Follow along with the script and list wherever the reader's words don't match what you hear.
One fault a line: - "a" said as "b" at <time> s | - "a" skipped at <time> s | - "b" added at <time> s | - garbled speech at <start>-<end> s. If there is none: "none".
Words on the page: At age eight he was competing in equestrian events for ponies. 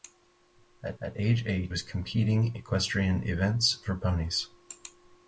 - "at" added at 1.0 s
- "he" skipped at 1.7 s
- "in" skipped at 2.6 s